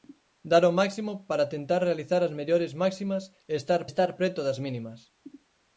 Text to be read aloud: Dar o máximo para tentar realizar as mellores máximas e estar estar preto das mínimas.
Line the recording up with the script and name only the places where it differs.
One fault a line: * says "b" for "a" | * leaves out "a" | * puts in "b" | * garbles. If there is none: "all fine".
all fine